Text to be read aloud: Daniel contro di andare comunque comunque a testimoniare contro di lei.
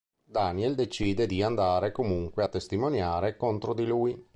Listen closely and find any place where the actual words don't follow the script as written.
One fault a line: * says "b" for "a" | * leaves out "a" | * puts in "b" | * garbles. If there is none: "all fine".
* says "decide" for "contro"
* leaves out "comunque"
* says "lui" for "lei"